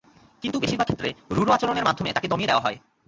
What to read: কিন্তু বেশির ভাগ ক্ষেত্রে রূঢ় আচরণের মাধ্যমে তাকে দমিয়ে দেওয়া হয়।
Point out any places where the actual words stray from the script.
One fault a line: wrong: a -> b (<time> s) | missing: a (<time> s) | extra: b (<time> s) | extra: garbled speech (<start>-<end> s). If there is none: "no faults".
no faults